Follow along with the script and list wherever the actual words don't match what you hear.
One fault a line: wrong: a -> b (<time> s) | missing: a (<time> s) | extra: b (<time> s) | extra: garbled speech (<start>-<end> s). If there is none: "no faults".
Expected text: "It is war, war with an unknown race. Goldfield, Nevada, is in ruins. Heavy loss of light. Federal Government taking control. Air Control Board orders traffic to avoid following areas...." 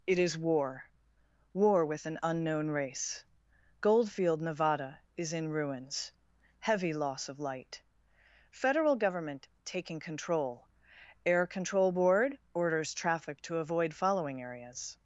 no faults